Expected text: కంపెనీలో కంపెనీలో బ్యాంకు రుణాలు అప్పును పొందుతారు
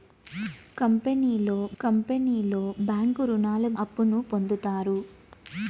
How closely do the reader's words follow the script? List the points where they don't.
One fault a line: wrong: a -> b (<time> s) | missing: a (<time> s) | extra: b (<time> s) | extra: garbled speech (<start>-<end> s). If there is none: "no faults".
no faults